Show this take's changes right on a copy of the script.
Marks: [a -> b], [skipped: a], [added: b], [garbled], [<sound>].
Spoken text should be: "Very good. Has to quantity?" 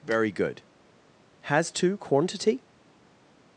"Very good. Has to quantity?"